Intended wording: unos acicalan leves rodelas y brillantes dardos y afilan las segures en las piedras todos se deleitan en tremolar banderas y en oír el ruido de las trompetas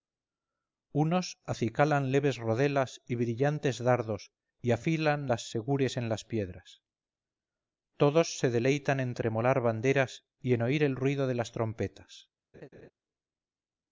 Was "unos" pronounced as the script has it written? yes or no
yes